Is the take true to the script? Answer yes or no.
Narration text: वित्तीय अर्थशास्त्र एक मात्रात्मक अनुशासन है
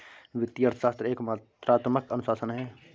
yes